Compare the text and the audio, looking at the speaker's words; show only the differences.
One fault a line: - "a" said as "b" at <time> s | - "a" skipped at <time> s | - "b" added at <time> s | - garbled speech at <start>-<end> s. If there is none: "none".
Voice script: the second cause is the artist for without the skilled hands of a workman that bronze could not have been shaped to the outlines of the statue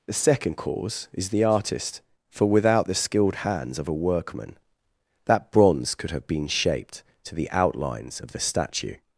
- "not" skipped at 6.1 s